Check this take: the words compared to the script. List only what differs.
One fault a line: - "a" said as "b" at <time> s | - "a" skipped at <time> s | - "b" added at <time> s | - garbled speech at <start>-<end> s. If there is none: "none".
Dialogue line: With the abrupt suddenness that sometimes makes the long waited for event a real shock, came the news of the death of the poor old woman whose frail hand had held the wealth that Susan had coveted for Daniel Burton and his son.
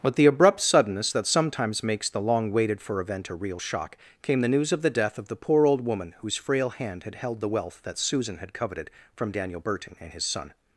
- "for" said as "from" at 9.1 s